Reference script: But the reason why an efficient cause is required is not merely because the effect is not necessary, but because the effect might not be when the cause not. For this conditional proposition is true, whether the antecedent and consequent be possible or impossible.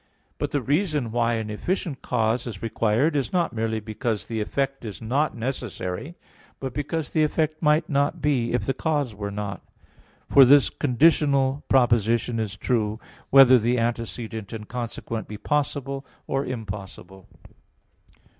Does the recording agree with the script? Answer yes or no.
no